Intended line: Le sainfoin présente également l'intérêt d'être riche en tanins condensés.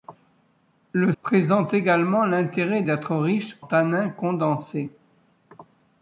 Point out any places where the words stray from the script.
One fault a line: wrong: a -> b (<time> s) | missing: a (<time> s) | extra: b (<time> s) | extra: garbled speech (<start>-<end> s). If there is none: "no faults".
missing: sainfoin (1.1 s)
missing: en (3.6 s)